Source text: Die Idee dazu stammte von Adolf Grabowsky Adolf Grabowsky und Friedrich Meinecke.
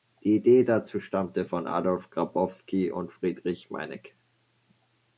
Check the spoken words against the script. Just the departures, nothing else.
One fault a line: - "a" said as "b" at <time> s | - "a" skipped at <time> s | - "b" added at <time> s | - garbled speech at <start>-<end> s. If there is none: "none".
- "Adolf Grabowsky" skipped at 2.9 s